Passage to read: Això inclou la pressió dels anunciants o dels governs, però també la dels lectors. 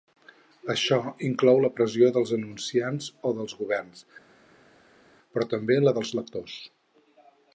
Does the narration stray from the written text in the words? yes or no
no